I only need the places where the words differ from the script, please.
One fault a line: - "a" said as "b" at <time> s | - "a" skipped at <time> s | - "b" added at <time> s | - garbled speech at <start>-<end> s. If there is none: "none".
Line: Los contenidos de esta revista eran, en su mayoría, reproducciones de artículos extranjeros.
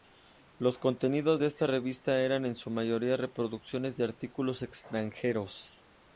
none